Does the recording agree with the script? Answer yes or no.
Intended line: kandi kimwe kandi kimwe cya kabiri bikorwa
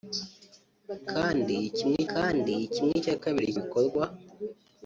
yes